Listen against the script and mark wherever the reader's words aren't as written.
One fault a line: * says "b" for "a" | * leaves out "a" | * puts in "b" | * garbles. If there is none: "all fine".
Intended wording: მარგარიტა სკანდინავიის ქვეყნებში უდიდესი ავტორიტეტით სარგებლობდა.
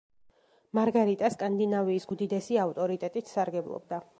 * leaves out "ქვეყნებში"